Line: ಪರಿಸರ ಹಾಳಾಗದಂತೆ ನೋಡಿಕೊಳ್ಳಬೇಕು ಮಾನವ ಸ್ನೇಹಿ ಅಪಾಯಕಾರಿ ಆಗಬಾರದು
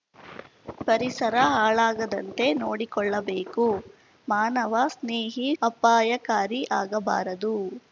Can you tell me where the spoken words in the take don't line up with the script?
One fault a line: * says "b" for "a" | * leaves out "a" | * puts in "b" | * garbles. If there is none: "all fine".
all fine